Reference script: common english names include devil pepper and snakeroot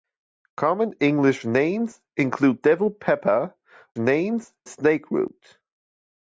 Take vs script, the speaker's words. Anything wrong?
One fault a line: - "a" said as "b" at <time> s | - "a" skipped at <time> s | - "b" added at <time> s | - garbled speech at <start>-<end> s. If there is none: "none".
- "and" said as "names" at 4.0 s